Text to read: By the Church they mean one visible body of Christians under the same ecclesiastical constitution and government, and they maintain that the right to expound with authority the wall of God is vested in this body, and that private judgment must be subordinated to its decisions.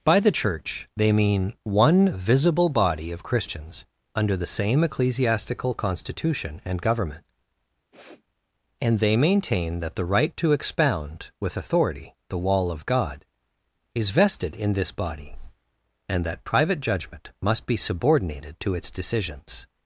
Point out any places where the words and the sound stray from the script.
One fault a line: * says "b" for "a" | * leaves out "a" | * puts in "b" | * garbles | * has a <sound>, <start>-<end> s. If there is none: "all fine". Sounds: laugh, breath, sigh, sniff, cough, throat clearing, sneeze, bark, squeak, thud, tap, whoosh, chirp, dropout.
* has a sniff, 7.9-8.2 s